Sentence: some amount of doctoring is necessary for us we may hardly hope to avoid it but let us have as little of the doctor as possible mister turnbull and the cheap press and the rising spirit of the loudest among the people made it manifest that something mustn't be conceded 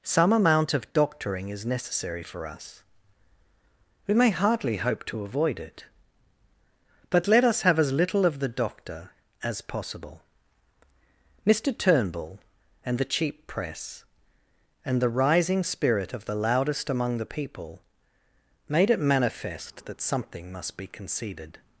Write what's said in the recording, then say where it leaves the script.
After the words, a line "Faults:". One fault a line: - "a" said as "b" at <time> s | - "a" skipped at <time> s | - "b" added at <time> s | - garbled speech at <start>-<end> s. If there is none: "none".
some amount of doctoring is necessary for us we may hardly hope to avoid it but let us have as little of the doctor as possible mister turnbull and the cheap press and the rising spirit of the loudest among the people made it manifest that something must be conceded
Faults:
- "mustn't" said as "must" at 20.5 s